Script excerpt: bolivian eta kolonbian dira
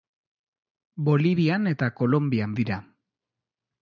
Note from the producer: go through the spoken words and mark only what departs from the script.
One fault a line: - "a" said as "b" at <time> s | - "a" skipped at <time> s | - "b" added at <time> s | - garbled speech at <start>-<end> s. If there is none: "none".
none